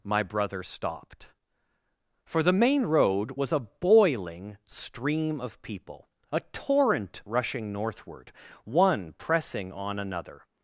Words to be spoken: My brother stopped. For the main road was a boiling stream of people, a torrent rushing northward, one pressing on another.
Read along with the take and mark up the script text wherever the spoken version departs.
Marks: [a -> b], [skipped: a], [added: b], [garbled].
My brother stopped. For the main road was a boiling stream of people, a torrent rushing northward, one pressing on another.